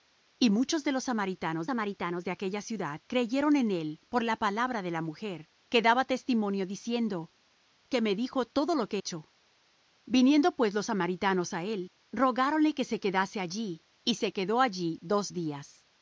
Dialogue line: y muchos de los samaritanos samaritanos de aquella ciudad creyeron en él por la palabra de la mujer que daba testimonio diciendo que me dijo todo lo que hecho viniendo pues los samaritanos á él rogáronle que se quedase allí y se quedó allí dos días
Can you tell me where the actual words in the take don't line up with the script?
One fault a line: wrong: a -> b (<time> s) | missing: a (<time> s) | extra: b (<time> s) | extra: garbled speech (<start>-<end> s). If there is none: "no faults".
no faults